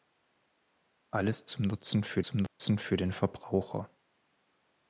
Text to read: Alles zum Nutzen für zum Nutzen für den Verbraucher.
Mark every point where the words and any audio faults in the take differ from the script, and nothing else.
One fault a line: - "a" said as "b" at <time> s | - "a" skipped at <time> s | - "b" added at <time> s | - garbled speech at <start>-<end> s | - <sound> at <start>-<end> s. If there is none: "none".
- dropout at 2.5-2.6 s